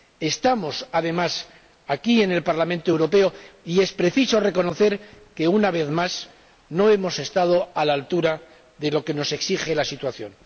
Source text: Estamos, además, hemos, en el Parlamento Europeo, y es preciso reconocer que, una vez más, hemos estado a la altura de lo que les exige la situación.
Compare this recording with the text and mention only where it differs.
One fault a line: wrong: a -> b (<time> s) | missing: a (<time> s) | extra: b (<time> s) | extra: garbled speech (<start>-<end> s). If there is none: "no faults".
wrong: hemos -> aquí (1.9 s)
extra: no (6.7 s)
wrong: les -> nos (9.1 s)